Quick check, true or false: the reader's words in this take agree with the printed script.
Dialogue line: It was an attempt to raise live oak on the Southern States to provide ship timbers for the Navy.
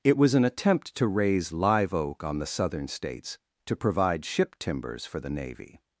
true